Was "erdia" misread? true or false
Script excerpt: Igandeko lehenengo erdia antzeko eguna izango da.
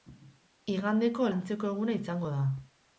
true